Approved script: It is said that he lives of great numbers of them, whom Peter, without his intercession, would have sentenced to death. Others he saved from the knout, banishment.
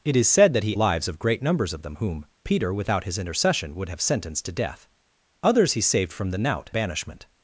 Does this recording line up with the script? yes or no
yes